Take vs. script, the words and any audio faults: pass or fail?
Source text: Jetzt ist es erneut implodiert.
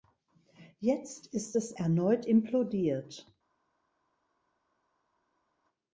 pass